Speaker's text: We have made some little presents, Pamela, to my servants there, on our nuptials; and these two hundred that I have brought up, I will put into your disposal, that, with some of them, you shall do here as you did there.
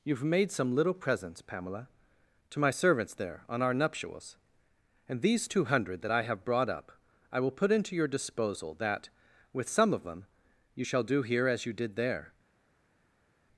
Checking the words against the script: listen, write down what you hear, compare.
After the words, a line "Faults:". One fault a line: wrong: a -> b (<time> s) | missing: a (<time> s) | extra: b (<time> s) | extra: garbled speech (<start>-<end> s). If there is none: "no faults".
You have made some little presents, Pamela, to my servants there, on our nuptials; and these two hundred that I have brought up, I will put into your disposal, that, with some of them, you shall do here as you did there.
Faults:
wrong: We -> You (0.0 s)